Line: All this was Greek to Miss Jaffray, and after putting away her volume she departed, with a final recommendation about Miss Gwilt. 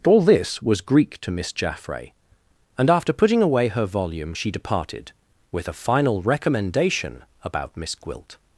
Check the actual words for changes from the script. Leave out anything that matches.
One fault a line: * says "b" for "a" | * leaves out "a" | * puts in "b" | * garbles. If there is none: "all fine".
all fine